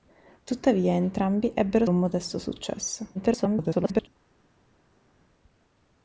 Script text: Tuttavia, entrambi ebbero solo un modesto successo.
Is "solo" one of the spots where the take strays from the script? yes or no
yes